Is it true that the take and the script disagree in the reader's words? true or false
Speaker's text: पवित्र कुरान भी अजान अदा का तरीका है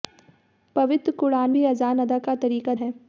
false